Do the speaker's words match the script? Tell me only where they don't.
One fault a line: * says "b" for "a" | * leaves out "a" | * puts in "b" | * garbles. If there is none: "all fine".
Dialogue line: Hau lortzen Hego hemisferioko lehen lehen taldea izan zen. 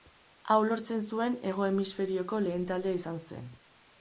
* puts in "zuen"
* leaves out "lehen"